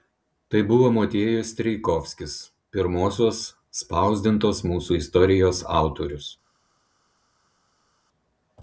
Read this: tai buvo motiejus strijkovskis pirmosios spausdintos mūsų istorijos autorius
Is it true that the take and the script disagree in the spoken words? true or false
false